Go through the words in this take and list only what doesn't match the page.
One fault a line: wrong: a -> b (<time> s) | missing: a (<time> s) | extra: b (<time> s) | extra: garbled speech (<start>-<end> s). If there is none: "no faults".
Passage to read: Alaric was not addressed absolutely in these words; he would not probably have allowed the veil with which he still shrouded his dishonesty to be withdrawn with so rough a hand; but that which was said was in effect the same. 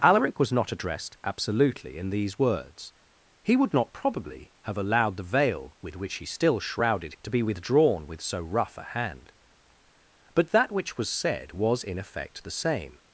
missing: his dishonesty (7.1 s)